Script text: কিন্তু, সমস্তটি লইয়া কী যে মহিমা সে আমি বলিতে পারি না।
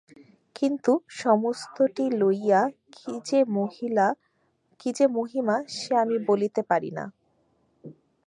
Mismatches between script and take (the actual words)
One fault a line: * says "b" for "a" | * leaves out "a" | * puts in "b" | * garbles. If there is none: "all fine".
all fine